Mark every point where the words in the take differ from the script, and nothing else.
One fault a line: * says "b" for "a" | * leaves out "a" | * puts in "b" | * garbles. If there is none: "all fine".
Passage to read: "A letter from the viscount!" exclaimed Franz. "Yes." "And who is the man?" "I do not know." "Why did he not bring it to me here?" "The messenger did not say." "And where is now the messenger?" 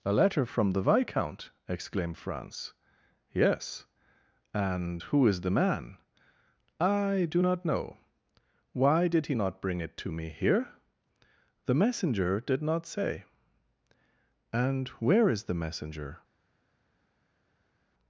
* leaves out "now"